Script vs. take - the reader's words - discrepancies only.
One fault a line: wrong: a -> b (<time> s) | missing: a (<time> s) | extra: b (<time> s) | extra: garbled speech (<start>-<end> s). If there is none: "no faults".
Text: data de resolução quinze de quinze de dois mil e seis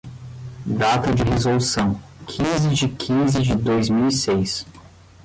no faults